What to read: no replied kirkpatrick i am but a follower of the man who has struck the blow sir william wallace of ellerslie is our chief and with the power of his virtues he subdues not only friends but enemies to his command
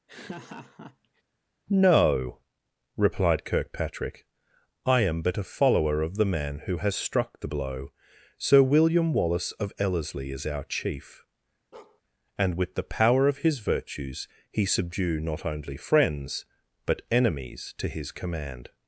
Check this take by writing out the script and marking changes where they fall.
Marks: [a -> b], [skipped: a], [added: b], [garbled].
no replied kirkpatrick i am but a follower of the man who has struck the blow sir william wallace of ellerslie is our chief and with the power of his virtues he [subdues -> subdue] not only friends but enemies to his command